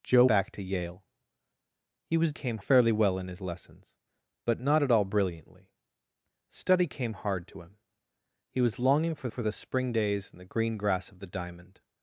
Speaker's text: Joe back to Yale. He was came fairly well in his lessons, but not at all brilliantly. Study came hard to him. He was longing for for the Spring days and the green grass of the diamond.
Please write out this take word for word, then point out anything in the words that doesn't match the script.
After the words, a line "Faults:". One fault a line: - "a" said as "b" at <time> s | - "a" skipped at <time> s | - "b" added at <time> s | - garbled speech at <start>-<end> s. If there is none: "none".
Joe back to Yale. He was came fairly well in his lessons, but not at all brilliantly. Study came hard to him. He was longing for for the Spring days and the green grass of the diamond.
Faults:
none